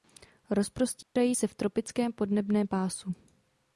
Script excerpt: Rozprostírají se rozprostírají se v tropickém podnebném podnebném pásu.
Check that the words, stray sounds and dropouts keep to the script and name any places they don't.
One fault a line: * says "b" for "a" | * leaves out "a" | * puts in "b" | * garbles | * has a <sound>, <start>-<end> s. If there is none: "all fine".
* has a dropout, 1.0-1.2 s
* leaves out "rozprostírají se"
* leaves out "podnebném"